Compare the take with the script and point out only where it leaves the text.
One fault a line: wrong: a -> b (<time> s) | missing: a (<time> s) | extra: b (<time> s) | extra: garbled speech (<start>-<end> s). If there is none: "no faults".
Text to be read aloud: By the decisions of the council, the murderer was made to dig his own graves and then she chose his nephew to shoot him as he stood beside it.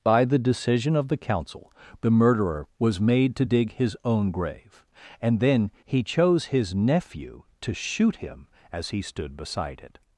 wrong: decisions -> decision (0.4 s)
wrong: graves -> grave (4.3 s)
wrong: she -> he (5.8 s)